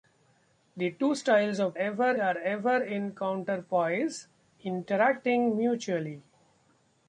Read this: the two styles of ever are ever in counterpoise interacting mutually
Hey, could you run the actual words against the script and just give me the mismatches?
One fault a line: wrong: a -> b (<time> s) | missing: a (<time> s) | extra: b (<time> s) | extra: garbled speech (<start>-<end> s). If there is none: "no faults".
no faults